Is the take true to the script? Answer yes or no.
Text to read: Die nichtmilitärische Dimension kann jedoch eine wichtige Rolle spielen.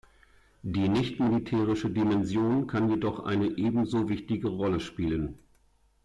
no